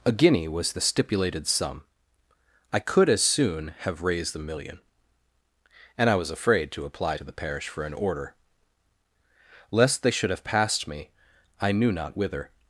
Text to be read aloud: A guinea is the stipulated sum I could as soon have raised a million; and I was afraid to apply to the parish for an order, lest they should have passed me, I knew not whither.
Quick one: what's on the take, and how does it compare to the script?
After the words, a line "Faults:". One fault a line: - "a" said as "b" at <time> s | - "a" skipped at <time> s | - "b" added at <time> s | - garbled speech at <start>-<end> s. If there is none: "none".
A guinea was the stipulated sum I could as soon have raised a million; and I was afraid to apply to the parish for an order, lest they should have passed me, I knew not whither.
Faults:
- "is" said as "was" at 0.5 s